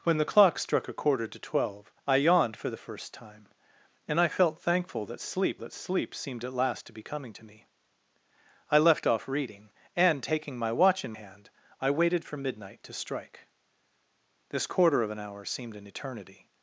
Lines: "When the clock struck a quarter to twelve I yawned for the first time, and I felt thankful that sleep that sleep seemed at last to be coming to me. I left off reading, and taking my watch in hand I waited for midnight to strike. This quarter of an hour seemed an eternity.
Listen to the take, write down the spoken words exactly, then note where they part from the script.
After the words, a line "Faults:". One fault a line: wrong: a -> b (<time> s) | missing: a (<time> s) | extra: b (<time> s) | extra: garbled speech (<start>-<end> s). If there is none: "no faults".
"When the clock struck a quarter to twelve I yawned for the first time, and I felt thankful that sleep that sleep seemed at last to be coming to me. I left off reading, and taking my watch in hand I waited for midnight to strike. This quarter of an hour seemed an eternity.
Faults:
no faults